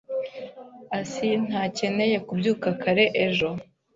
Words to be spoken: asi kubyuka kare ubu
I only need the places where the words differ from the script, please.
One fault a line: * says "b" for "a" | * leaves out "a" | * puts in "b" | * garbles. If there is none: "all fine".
* puts in "ntakeneye"
* says "ejo" for "ubu"